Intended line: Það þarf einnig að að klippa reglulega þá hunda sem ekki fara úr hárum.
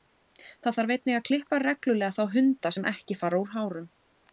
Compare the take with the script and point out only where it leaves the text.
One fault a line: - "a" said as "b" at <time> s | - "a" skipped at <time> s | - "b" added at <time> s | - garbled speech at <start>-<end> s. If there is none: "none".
- "að" skipped at 1.3 s